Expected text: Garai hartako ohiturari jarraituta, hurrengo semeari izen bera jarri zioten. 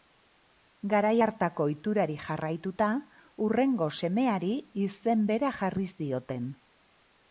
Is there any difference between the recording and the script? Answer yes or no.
no